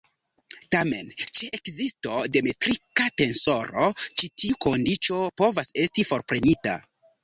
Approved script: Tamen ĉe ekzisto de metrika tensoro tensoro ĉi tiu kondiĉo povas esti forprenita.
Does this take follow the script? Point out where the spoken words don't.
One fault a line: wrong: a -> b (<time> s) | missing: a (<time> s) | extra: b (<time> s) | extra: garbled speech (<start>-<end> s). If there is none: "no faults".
missing: tensoro (3.9 s)